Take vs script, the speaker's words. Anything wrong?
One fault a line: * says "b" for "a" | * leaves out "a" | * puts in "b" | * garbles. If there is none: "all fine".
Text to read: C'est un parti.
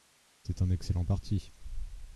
* puts in "excellent"